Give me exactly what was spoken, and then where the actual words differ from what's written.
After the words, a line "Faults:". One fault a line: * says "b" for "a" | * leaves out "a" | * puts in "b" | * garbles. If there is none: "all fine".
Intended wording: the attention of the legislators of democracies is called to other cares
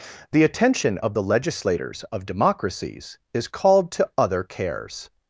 the attention of the legislators of democracies is called to other cares
Faults:
all fine